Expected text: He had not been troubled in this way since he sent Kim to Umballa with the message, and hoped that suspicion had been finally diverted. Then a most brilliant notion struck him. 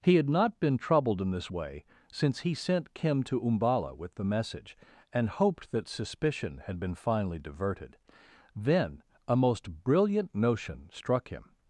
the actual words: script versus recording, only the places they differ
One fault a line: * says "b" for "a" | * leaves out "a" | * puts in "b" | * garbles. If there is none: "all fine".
all fine